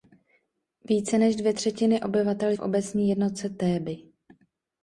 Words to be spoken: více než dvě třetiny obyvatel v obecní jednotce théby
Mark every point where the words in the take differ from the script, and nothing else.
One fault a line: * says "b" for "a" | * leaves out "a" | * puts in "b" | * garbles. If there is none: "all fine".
all fine